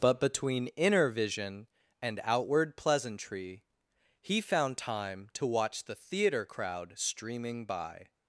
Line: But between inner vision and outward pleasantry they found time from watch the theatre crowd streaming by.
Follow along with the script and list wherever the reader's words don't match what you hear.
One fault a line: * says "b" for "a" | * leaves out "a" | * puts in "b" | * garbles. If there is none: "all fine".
* says "he" for "they"
* says "to" for "from"